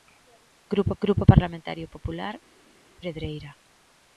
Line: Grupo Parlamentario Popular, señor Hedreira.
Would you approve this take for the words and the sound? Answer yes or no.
no